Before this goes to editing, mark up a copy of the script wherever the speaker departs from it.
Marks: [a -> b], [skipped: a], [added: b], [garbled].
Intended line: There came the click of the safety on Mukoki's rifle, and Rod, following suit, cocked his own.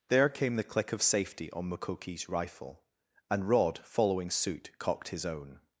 There came the click of [skipped: the] safety on Mukoki's rifle, and Rod, following suit, cocked his own.